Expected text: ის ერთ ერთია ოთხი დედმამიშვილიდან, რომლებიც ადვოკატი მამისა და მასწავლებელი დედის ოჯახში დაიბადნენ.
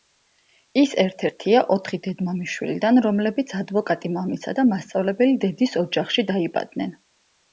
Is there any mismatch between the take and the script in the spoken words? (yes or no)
no